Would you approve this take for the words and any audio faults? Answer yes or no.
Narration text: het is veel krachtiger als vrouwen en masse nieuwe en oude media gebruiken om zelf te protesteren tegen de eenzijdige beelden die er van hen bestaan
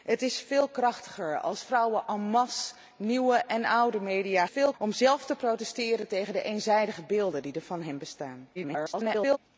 no